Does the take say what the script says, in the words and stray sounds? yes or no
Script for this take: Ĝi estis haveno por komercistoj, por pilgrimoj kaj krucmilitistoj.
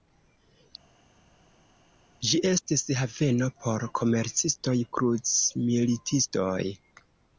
no